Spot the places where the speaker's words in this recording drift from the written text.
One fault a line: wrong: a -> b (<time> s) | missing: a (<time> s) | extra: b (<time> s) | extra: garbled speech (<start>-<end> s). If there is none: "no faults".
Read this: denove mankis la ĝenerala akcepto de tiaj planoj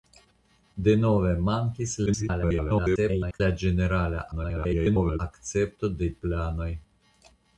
extra: garbled speech (2.1-3.4 s)
extra: garbled speech (4.3-5.2 s)
missing: tiaj (6.2 s)